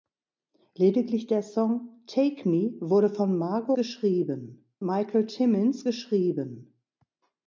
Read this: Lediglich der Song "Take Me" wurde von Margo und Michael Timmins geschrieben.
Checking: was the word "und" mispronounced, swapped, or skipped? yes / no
yes